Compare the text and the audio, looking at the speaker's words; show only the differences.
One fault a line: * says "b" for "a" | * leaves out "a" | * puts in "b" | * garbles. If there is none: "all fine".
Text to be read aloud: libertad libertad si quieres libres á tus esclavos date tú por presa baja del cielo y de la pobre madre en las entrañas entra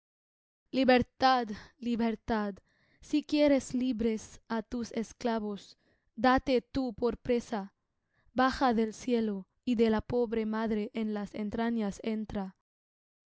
all fine